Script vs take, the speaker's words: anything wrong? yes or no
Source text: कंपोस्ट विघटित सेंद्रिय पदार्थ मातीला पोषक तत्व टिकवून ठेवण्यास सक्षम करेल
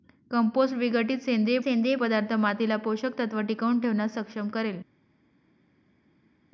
yes